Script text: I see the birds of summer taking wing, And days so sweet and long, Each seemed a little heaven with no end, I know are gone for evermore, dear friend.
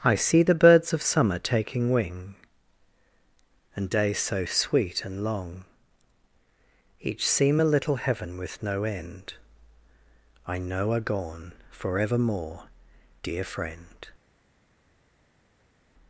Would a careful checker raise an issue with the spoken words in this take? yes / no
yes